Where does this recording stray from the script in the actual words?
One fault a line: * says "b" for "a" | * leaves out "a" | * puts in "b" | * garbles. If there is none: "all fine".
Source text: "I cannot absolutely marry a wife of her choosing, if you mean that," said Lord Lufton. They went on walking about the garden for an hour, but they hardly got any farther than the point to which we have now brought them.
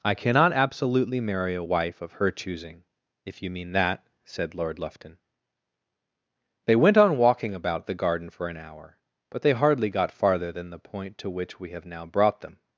* leaves out "any"